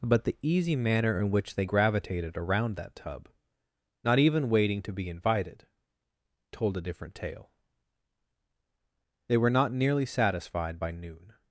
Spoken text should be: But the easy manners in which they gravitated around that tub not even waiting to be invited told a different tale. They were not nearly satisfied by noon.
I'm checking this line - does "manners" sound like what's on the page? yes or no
no